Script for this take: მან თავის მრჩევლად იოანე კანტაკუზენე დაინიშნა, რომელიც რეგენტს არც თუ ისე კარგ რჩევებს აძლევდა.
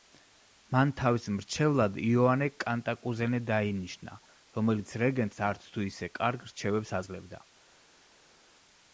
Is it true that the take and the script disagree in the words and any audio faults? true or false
false